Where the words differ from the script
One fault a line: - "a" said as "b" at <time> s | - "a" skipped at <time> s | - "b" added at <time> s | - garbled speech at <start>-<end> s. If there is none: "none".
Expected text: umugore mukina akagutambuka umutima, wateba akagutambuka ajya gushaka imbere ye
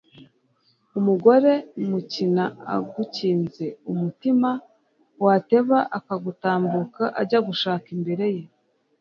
- "akagutambuka" said as "agukinze" at 2.8 s